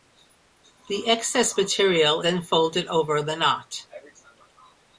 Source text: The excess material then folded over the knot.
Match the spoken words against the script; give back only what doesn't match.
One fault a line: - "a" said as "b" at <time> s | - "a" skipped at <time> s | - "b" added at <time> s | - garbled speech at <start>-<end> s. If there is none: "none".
none